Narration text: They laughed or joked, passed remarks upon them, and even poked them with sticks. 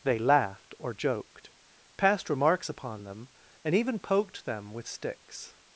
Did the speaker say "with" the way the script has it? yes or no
yes